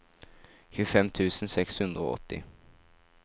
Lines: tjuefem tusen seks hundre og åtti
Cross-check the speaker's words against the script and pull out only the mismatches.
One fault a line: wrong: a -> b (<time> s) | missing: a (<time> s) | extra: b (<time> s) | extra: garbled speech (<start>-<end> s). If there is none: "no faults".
no faults